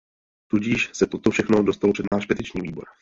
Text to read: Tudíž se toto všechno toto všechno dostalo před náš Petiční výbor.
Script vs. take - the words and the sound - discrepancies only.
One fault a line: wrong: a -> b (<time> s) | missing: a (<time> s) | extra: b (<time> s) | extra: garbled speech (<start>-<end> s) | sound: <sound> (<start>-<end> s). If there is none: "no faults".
missing: toto všechno (1.6 s)
sound: dropout (2.1-2.1 s)